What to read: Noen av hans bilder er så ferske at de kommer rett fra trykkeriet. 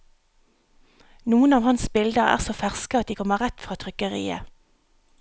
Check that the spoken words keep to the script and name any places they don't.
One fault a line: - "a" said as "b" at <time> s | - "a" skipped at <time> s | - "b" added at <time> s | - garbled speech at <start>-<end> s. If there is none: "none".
none